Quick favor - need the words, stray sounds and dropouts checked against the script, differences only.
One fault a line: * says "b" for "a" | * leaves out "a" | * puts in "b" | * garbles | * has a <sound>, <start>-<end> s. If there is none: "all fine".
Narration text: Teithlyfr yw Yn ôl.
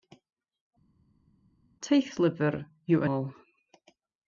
* leaves out "Yn"